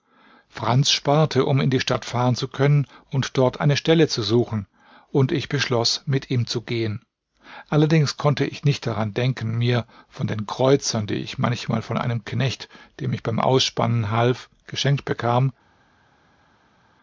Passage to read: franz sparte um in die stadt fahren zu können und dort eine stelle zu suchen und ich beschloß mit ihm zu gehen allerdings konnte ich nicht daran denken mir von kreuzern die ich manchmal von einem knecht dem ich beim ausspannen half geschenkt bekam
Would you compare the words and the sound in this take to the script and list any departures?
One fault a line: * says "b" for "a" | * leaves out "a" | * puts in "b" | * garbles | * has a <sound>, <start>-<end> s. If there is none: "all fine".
* puts in "den"